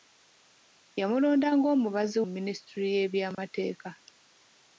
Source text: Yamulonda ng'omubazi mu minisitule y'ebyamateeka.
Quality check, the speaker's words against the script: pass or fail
pass